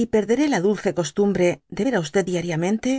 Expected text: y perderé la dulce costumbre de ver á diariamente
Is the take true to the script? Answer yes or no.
yes